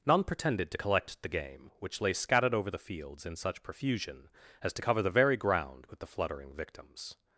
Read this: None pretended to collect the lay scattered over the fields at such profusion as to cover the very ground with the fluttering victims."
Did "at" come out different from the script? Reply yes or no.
yes